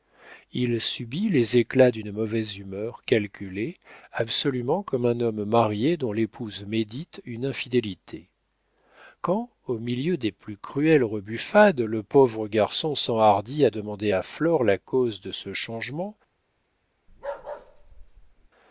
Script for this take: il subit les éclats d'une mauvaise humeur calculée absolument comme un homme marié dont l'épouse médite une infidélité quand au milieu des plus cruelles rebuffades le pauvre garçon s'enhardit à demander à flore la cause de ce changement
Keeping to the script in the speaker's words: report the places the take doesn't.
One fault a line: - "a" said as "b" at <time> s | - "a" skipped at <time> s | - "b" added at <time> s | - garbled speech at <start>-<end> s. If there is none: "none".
none